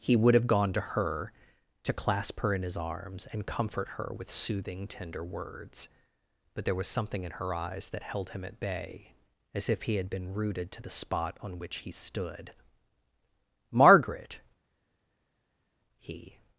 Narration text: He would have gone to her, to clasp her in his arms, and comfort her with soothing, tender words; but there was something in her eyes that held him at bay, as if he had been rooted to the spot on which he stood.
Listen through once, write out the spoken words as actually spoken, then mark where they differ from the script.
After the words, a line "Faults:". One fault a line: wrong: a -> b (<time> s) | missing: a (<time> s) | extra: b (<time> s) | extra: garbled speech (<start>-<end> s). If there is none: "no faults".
He would have gone to her, to clasp her in his arms, and comfort her with soothing, tender words; but there was something in her eyes that held him at bay, as if he had been rooted to the spot on which he stood. "Margaret!" he
Faults:
extra: Margaret he (13.7 s)